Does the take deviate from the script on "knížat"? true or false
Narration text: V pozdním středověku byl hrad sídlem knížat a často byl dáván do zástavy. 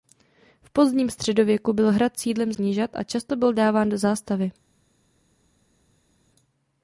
false